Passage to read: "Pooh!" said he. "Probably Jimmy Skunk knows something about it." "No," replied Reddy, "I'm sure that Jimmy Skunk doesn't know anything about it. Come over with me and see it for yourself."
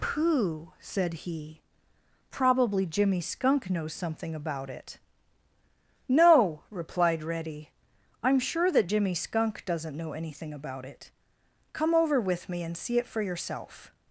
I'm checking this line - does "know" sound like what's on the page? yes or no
yes